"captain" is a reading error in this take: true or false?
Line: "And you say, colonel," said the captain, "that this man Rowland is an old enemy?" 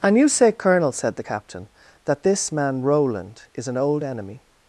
false